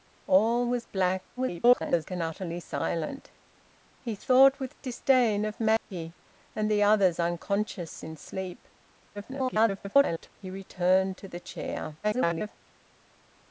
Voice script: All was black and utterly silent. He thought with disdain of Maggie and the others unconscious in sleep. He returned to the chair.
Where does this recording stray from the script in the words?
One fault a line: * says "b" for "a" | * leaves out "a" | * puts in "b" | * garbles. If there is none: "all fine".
* garbles
* garbles
* garbles